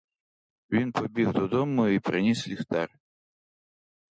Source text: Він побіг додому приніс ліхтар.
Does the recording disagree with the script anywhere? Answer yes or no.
yes